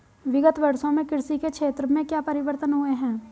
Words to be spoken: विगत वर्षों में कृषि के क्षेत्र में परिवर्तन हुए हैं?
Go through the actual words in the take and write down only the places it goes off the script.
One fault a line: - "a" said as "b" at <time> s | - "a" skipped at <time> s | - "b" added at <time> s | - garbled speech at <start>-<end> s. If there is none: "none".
- "क्या" added at 2.0 s